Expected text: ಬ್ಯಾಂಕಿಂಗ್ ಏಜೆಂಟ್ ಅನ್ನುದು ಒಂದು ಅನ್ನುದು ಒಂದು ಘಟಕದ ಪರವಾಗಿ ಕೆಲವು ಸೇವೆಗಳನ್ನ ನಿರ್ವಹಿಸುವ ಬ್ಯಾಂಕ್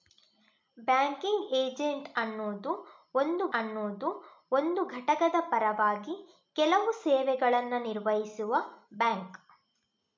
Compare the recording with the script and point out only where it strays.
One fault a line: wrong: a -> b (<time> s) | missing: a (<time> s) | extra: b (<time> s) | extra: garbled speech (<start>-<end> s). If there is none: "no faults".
no faults